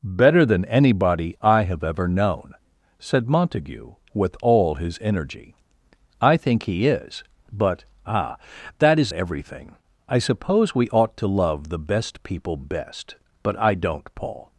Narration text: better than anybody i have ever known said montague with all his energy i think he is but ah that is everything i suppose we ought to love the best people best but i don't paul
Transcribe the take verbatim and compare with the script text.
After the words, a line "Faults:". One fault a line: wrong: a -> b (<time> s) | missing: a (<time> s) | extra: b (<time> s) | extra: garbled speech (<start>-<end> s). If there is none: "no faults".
better than anybody i have ever known said montague with all his energy i think he is but ah that is everything i suppose we ought to love the best people best but i don't paul
Faults:
no faults